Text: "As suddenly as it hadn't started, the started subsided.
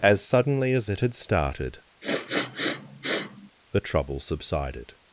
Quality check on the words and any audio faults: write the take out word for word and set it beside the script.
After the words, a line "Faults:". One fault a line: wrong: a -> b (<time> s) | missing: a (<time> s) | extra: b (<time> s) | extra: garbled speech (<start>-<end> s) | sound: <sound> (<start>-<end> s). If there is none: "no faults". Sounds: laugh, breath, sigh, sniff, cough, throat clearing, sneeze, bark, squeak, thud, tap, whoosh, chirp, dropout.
"As suddenly as it had started, the trouble subsided.
Faults:
wrong: hadn't -> had (1.0 s)
sound: sniff (2.0-3.5 s)
wrong: started -> trouble (3.8 s)